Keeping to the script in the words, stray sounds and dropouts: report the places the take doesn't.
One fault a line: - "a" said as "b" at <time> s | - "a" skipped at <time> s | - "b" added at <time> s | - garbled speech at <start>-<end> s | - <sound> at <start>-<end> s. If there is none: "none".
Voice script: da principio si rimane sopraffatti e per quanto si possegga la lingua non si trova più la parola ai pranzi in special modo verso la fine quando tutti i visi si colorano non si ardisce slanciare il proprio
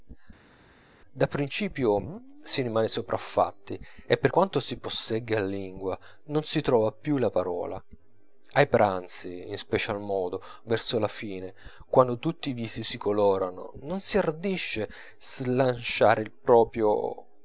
none